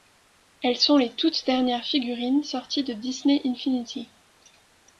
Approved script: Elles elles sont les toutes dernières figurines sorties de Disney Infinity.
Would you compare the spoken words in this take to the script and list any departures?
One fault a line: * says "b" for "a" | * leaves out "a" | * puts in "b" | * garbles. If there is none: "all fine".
* leaves out "elles"